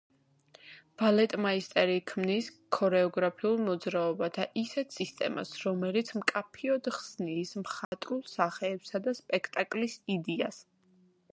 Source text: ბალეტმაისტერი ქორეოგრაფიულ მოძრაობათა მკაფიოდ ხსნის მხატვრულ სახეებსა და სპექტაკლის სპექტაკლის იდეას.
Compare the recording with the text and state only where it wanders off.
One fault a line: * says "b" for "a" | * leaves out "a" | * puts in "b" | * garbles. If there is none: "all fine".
* puts in "ქმნის"
* puts in "ისეთ სისტემას რომელიც"
* leaves out "სპექტაკლის"